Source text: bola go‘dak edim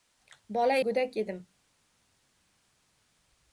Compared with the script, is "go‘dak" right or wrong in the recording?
right